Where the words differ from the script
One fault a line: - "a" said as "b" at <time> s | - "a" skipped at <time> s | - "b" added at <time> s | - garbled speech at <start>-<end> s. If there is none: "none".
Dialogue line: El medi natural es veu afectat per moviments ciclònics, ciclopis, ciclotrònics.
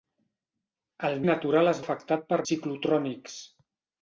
- "medi" skipped at 1.2 s
- "veu" skipped at 1.8 s
- "moviments ciclònics ciclopis" skipped at 2.4 s